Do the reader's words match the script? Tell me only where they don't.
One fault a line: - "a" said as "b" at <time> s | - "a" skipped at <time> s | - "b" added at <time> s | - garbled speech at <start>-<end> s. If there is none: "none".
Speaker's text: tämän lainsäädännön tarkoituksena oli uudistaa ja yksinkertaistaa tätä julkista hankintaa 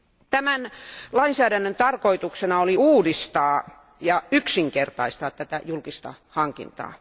none